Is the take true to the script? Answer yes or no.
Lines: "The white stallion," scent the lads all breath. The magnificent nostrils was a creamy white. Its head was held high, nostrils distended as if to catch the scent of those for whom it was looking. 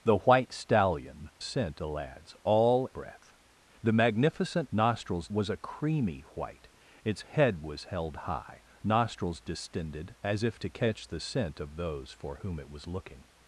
yes